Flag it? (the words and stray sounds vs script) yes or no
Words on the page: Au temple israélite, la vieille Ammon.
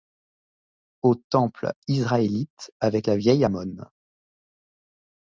yes